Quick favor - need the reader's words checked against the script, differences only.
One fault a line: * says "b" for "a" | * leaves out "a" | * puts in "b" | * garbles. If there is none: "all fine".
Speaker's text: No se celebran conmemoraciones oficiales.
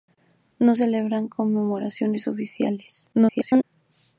* leaves out "se"
* garbles